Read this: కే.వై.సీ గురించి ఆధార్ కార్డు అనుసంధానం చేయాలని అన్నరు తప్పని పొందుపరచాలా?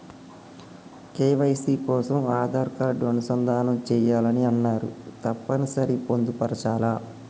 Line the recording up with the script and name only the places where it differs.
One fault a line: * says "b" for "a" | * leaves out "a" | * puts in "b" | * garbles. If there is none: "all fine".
* says "కోసం" for "గురించి"
* puts in "సరి"